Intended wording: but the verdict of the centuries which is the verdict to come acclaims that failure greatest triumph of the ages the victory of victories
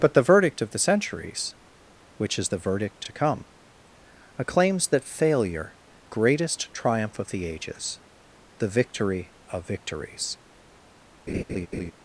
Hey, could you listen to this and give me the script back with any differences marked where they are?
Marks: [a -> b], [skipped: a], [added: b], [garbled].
but the verdict of the centuries which is the verdict to come acclaims that failure greatest triumph of the ages the victory of victories